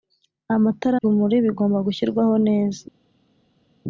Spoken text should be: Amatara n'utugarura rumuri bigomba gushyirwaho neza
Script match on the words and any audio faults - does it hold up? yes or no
no